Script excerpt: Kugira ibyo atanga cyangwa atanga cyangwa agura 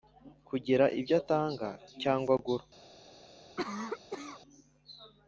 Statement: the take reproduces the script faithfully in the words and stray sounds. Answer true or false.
false